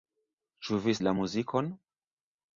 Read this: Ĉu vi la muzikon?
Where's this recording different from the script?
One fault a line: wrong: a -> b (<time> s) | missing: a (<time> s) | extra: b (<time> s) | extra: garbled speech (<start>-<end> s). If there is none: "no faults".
no faults